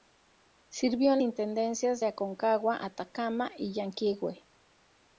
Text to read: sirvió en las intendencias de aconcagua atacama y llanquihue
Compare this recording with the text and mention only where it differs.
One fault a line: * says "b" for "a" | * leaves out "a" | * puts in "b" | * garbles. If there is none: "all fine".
* leaves out "las"